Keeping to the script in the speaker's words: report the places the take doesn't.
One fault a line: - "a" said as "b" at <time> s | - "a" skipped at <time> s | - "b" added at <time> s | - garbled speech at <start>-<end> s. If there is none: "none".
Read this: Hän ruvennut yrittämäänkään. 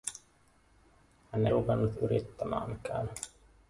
none